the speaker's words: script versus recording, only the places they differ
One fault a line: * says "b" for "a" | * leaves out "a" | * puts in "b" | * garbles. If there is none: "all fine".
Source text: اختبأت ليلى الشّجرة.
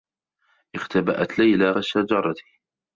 all fine